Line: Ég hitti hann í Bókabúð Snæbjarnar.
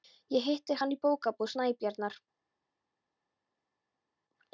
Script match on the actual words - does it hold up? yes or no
yes